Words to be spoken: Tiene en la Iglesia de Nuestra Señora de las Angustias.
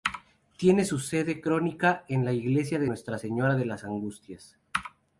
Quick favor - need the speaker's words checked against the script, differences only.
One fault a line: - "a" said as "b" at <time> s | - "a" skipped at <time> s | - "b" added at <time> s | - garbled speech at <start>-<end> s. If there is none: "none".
- "su sede canónica" added at 0.8 s